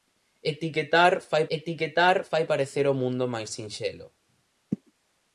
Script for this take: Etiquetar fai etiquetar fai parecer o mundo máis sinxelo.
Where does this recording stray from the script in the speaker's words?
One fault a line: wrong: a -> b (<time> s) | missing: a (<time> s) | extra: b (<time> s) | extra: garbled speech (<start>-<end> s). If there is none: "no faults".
no faults